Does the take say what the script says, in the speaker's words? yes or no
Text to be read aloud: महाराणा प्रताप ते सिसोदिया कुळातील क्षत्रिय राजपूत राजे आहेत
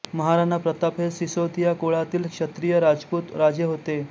no